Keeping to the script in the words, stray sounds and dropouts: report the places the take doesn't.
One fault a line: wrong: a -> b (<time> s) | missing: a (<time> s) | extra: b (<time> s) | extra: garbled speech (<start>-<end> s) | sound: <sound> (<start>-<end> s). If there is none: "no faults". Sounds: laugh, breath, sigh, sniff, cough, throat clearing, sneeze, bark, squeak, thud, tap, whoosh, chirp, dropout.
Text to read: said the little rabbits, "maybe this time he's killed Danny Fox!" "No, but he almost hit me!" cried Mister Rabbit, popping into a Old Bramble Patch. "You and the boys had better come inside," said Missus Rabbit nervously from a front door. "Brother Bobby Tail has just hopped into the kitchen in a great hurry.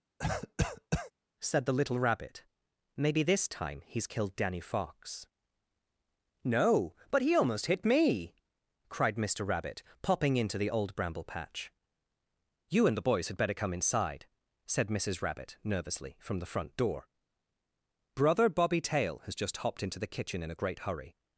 sound: cough (0.2-1.1 s)
wrong: rabbits -> rabbit (2.0 s)
wrong: a -> the (10.6 s)
wrong: a -> the (16.4 s)